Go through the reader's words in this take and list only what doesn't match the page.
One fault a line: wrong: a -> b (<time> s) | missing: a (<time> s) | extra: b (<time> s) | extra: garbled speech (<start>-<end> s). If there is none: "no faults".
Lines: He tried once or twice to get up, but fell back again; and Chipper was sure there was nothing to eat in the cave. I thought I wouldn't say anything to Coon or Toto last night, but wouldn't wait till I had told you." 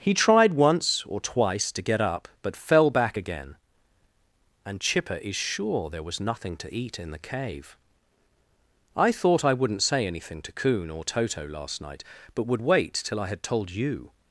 wrong: was -> is (5.2 s)
wrong: wouldn't -> would (12.4 s)